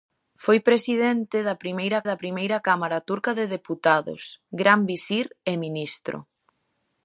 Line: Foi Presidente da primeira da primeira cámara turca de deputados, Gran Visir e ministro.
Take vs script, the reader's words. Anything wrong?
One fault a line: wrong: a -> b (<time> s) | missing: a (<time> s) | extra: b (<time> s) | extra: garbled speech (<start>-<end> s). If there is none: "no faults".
no faults